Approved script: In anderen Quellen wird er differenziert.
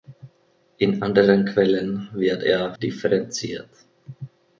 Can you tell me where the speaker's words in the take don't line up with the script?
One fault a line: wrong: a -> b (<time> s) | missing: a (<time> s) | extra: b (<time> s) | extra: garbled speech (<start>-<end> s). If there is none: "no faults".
no faults